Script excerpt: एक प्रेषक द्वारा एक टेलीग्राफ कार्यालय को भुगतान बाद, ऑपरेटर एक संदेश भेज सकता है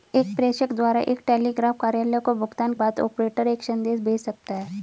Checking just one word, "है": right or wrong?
right